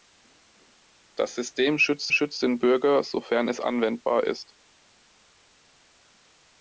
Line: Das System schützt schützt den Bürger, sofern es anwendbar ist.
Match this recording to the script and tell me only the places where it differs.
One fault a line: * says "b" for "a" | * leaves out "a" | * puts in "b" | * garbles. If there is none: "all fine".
all fine